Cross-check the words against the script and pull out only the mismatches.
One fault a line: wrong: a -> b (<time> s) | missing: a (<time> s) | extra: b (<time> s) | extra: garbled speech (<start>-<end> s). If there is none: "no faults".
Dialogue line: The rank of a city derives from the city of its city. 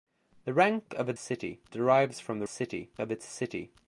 no faults